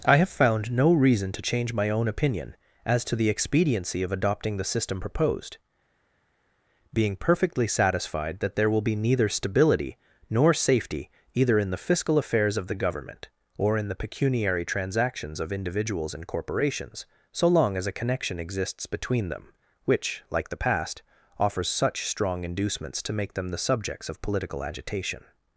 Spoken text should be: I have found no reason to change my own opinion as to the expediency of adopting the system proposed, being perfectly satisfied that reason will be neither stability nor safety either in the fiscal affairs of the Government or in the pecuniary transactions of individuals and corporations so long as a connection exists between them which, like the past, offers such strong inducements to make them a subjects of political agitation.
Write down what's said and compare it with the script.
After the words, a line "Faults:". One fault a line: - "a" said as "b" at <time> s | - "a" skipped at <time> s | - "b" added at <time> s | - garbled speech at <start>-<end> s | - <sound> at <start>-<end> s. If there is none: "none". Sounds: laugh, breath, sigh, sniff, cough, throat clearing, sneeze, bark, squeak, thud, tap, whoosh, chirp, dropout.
I have found no reason to change my own opinion as to the expediency of adopting the system proposed, being perfectly satisfied that there will be neither stability nor safety either in the fiscal affairs of the Government or in the pecuniary transactions of individuals and corporations so long as a connection exists between them which, like the past, offers such strong inducements to make them the subjects of political agitation.
Faults:
- "reason" said as "there" at 8.6 s
- "a" said as "the" at 23.5 s